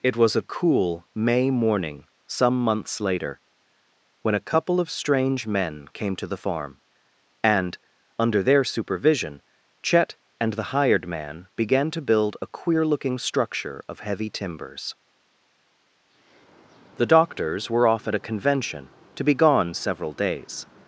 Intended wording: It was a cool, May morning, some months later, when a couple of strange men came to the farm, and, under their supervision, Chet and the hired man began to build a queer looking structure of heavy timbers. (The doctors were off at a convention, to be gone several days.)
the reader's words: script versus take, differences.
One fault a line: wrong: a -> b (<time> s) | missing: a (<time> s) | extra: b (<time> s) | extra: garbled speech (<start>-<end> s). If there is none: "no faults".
no faults